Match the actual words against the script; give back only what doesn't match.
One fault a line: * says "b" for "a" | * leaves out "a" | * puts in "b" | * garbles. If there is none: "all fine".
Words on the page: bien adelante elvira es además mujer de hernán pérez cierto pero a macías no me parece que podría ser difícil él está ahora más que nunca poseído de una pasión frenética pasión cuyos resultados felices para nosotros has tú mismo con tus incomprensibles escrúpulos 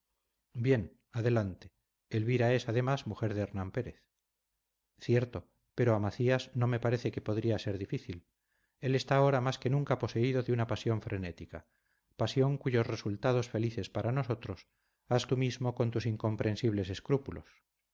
all fine